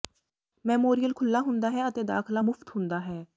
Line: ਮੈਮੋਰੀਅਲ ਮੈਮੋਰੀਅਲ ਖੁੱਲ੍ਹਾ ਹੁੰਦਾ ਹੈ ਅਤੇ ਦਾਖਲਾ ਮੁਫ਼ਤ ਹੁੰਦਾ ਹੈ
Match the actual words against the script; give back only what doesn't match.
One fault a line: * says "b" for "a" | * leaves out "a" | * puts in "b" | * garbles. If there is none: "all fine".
* leaves out "ਮੈਮੋਰੀਅਲ"